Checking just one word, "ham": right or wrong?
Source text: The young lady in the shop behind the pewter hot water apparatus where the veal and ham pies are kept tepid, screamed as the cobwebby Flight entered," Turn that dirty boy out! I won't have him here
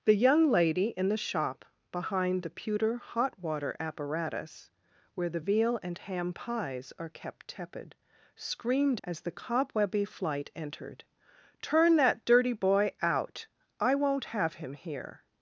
right